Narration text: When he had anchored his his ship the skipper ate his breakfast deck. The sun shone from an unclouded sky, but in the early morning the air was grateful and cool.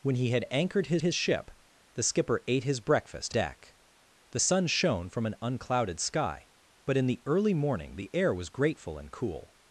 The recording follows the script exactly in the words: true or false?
true